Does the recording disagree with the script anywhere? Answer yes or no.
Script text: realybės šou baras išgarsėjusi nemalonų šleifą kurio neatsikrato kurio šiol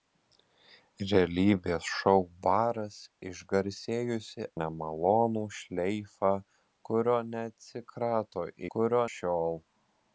no